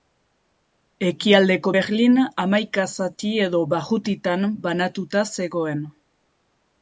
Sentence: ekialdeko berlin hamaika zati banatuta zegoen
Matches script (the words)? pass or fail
fail